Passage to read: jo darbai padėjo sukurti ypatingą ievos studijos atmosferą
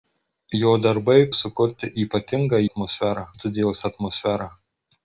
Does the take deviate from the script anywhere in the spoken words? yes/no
yes